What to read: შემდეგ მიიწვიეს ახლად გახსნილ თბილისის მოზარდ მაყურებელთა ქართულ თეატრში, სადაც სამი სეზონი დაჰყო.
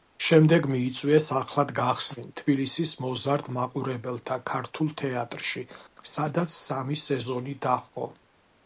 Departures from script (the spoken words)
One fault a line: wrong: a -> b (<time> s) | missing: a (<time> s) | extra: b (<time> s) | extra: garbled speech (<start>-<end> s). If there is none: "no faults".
no faults